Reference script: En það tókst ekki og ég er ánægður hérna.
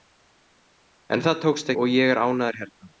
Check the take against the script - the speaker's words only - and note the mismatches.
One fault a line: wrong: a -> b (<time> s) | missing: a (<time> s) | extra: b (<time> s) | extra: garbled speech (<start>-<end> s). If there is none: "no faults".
missing: ekki (1.7 s)